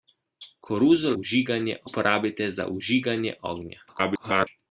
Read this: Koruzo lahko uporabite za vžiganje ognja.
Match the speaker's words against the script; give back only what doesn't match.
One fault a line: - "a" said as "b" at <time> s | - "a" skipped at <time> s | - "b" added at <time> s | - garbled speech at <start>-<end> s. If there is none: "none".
- "lahko" said as "vžiganje" at 1.2 s
- garbled speech at 3.9-4.5 s